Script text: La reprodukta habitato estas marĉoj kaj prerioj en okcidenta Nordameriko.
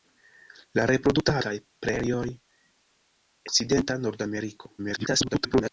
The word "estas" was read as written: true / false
false